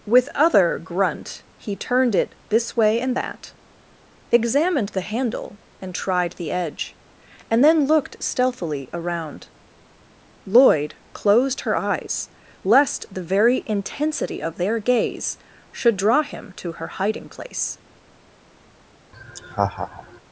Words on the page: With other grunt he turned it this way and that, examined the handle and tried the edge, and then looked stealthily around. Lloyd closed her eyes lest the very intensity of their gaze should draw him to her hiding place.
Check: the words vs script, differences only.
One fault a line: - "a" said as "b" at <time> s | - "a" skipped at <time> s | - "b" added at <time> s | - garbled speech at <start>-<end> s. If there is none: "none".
none